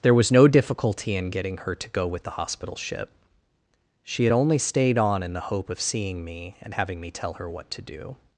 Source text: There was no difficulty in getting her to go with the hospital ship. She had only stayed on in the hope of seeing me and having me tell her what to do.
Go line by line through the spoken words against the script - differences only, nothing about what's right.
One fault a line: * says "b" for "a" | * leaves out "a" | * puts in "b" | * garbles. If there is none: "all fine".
all fine